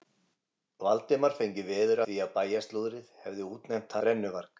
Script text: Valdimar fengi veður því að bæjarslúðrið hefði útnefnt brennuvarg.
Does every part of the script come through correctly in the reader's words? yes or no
yes